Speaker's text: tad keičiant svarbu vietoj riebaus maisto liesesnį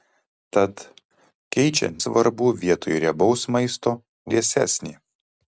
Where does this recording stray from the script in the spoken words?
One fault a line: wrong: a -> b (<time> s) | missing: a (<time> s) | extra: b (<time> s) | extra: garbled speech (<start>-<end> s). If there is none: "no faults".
no faults